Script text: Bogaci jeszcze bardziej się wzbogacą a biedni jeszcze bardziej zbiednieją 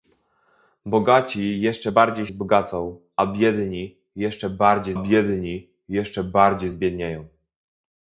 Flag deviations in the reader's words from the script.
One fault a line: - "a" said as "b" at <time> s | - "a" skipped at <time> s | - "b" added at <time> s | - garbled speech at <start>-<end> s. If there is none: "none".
- "się" skipped at 2.3 s
- "biedni jeszcze bardziej" added at 4.9 s